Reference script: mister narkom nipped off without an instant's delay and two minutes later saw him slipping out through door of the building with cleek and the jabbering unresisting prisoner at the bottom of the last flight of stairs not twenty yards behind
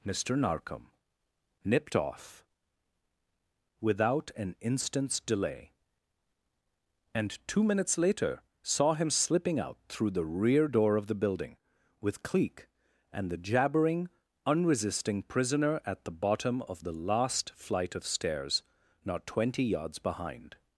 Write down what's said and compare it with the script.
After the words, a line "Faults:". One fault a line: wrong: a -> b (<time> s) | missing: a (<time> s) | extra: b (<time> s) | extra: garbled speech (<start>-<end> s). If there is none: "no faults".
mister narkom nipped off without an instant's delay and two minutes later saw him slipping out through the rear door of the building with cleek and the jabbering unresisting prisoner at the bottom of the last flight of stairs not twenty yards behind
Faults:
extra: the rear (10.1 s)